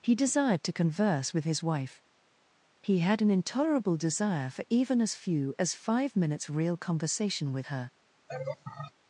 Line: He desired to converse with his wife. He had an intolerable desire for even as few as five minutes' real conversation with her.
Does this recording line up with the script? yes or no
yes